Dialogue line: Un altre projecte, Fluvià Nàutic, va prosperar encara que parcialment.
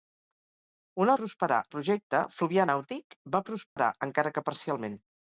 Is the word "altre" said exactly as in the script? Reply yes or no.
no